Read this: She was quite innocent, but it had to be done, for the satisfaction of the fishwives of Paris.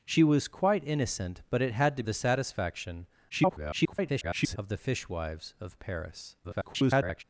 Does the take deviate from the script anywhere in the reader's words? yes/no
yes